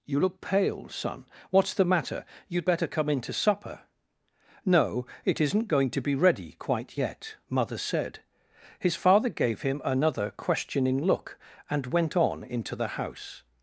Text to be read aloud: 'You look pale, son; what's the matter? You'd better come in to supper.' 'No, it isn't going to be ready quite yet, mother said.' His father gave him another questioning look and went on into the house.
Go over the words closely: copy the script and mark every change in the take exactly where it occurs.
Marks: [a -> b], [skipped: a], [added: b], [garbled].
'You look pale, son; what's the matter? You'd better come in to supper.' 'No, it isn't going to be ready quite yet, mother said.' His father gave him another questioning look and went on into the house.